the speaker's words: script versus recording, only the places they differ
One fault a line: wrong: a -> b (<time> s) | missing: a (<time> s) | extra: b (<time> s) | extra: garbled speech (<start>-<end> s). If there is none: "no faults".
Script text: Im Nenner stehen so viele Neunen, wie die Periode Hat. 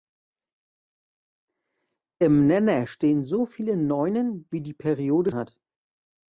no faults